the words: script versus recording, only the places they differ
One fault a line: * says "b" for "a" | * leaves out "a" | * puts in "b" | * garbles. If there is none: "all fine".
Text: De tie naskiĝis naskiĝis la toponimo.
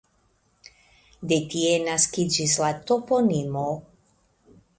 * leaves out "naskiĝis"